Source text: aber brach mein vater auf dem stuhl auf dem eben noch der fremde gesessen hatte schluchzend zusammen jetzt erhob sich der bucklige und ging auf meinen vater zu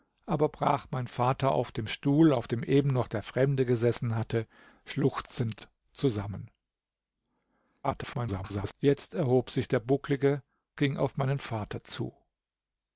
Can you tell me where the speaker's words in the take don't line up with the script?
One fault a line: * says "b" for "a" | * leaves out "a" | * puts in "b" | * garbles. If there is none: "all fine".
* garbles
* leaves out "und"